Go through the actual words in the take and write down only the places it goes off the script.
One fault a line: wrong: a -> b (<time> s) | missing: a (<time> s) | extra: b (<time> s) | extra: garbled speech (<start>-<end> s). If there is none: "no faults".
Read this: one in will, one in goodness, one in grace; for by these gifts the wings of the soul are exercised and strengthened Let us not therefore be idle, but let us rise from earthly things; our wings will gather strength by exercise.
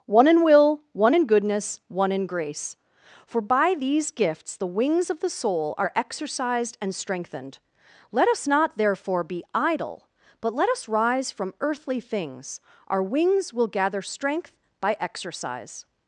no faults